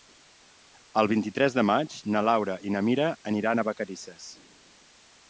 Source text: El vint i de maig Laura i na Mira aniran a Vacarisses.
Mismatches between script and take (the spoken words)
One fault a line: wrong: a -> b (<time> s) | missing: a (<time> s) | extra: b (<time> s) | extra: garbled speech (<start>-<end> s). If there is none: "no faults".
extra: tres (1.4 s)
extra: na (2.1 s)